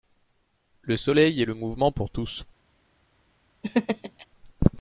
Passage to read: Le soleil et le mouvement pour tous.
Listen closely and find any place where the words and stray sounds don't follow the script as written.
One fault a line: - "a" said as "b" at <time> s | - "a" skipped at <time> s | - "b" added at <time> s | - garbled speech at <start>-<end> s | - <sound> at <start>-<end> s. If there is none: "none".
- laugh at 3.6-4.3 s